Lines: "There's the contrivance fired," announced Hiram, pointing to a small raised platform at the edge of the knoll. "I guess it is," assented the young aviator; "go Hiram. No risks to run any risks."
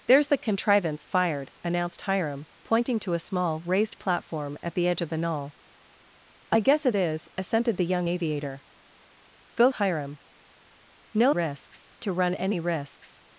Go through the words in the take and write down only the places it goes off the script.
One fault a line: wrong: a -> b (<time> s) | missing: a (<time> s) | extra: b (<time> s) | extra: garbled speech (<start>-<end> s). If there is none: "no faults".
no faults